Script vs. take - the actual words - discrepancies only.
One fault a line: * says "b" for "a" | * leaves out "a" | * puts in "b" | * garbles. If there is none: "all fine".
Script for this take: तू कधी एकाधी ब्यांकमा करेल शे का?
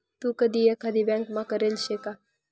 all fine